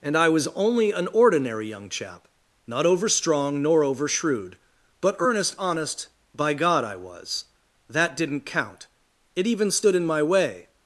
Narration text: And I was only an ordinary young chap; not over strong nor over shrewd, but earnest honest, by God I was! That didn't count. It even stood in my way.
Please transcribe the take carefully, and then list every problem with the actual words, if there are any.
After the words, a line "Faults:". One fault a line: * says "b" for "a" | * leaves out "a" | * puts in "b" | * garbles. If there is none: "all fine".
And I was only an ordinary young chap; not over strong nor over shrewd, but earnest honest, by God I was! That didn't count. It even stood in my way.
Faults:
all fine